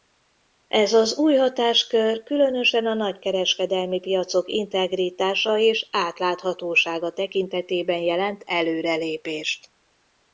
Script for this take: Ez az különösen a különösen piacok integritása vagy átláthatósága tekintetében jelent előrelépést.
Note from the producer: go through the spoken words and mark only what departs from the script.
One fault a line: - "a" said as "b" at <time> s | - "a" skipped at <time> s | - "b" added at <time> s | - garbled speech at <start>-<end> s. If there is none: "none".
- "új hatáskör" added at 1.2 s
- "különösen" said as "nagykereskedelmi" at 2.9 s
- "vagy" said as "és" at 5.6 s